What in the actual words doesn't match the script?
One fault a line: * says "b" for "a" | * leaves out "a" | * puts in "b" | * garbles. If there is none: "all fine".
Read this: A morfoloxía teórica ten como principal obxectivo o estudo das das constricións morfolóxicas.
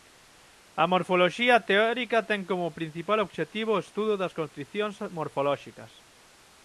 * leaves out "das"